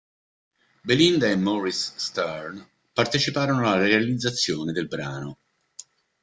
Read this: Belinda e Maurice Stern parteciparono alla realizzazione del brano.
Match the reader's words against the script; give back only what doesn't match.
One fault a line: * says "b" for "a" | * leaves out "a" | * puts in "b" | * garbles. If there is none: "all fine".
all fine